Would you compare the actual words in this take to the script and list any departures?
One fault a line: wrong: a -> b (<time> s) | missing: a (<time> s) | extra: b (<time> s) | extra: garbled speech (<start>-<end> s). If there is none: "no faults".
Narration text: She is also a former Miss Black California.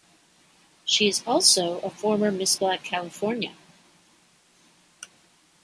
no faults